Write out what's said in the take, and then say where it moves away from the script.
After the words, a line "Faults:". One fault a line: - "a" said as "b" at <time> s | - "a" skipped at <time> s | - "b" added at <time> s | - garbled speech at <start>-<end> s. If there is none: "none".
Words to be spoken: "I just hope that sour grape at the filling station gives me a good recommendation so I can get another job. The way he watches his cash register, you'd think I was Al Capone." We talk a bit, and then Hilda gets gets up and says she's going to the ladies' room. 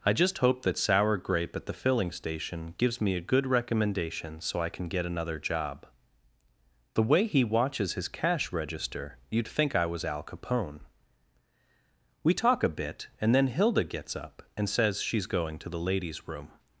"I just hope that sour grape at the filling station gives me a good recommendation so I can get another job. The way he watches his cash register, you'd think I was Al Capone." We talk a bit, and then Hilda gets up and says she's going to the ladies' room.
Faults:
- "gets" skipped at 14.2 s